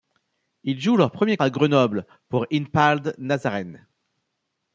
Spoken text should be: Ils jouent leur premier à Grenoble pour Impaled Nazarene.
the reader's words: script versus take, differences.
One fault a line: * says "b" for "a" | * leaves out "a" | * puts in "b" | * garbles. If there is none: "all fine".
all fine